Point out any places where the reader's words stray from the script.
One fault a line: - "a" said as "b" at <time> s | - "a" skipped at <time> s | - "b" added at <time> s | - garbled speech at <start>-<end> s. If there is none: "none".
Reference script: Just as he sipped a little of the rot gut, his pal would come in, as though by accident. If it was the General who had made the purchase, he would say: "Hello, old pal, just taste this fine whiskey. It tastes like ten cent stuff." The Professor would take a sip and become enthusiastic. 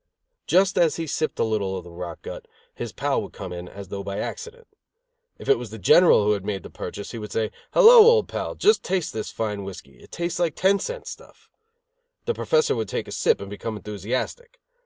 none